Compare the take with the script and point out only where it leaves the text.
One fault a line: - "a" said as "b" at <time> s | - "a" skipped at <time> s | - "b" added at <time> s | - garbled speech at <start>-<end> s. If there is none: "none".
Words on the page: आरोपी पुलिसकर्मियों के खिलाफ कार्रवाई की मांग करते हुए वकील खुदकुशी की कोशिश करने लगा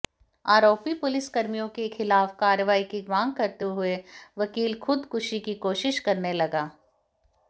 none